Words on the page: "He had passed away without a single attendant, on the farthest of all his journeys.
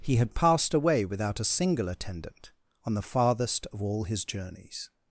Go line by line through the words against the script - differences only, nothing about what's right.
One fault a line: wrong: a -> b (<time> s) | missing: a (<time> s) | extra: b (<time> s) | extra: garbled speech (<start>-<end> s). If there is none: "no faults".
no faults